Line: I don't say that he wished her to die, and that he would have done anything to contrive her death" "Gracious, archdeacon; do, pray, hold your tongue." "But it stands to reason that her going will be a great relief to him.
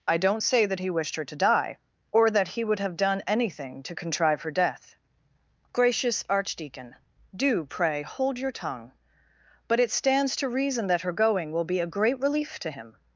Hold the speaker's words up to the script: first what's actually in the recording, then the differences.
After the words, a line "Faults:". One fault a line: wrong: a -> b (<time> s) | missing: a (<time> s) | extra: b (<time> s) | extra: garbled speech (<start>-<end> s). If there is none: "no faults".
I don't say that he wished her to die, or that he would have done anything to contrive her death" "Gracious, archdeacon; do, pray, hold your tongue." "But it stands to reason that her going will be a great relief to him.
Faults:
wrong: and -> or (2.1 s)